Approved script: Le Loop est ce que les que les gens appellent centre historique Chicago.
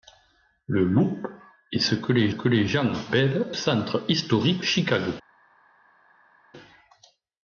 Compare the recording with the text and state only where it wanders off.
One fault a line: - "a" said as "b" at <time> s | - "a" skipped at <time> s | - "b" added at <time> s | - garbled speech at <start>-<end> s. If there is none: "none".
none